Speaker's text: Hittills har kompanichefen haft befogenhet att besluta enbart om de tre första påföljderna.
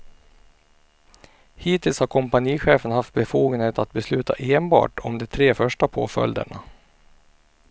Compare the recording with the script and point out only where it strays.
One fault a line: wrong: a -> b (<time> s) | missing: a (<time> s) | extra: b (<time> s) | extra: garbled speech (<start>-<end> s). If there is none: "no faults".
no faults